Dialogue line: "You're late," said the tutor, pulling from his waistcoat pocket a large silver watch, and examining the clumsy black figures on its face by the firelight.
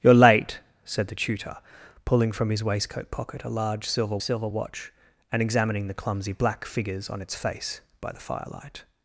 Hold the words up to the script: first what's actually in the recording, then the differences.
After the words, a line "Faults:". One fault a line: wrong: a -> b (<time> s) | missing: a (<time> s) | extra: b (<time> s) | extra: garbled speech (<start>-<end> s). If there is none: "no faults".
"You're late," said the tutor, pulling from his waistcoat pocket a large silver silver watch, and examining the clumsy black figures on its face by the firelight.
Faults:
extra: silver (4.2 s)